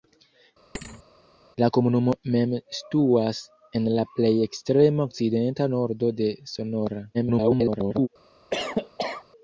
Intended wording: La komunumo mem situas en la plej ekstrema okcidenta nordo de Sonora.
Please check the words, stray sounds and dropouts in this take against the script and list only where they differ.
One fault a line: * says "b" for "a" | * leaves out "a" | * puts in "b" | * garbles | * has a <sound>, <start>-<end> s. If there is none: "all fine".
* has a thud, 0.7-1.0 s
* garbles
* has a cough, 8.5-9.3 s